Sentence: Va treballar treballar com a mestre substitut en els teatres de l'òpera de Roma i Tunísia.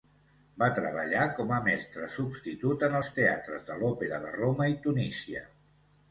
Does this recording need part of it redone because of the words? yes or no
yes